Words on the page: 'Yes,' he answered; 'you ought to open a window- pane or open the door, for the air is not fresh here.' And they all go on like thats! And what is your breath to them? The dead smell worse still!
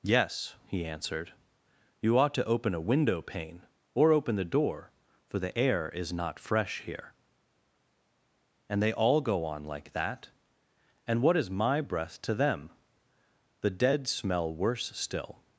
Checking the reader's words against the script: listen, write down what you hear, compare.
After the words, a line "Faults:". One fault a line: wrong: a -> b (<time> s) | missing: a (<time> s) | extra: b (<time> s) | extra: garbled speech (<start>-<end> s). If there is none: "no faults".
'Yes,' he answered; 'you ought to open a window- pane or open the door, for the air is not fresh here.' And they all go on like that! And what is my breath to them? The dead smell worse still!
Faults:
wrong: thats -> that (9.9 s)
wrong: your -> my (11.5 s)